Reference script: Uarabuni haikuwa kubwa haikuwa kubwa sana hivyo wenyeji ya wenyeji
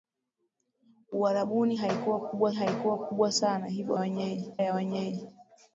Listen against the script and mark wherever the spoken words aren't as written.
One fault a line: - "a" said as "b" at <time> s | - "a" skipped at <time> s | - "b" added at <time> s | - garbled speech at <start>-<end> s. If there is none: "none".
none